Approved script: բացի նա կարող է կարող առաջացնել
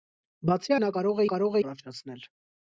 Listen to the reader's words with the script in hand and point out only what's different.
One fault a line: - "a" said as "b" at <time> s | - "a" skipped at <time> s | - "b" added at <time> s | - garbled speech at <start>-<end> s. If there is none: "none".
none